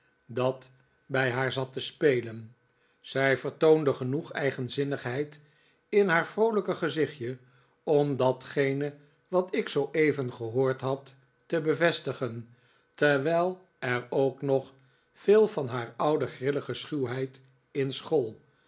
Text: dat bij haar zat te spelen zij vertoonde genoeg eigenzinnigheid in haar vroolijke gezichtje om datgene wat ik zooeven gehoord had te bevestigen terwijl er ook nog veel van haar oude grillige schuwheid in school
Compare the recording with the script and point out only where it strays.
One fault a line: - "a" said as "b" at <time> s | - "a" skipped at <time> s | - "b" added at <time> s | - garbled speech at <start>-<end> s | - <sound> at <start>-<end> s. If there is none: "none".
none